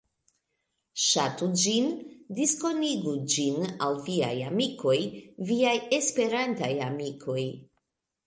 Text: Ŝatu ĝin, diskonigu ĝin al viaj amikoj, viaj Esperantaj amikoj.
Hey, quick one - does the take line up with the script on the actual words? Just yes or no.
yes